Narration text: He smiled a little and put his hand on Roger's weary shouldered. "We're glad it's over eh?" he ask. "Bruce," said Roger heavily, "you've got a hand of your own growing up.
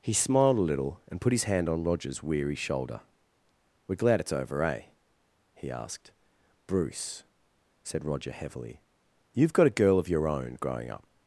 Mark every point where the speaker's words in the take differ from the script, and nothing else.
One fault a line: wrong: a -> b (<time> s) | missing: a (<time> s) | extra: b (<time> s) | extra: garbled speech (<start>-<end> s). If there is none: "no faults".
wrong: shouldered -> shoulder (2.5 s)
wrong: ask -> asked (5.7 s)
wrong: hand -> girl (9.7 s)